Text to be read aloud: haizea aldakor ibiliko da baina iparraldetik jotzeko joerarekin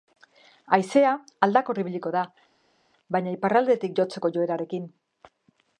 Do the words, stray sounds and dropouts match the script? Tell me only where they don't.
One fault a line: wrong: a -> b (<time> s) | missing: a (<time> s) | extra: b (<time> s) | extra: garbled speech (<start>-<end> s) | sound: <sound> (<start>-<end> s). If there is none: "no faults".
no faults